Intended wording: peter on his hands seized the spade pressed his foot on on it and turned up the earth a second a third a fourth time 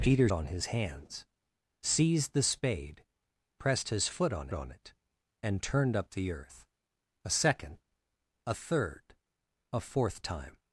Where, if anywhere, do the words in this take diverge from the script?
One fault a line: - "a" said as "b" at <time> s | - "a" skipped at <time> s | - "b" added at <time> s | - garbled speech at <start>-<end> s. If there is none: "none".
none